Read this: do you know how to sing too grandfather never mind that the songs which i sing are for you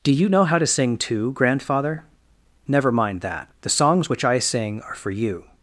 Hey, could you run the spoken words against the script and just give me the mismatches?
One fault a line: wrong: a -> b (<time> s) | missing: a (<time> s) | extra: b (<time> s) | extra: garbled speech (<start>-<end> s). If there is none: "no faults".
no faults